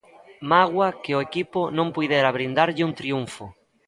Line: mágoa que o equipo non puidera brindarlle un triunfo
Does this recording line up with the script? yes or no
yes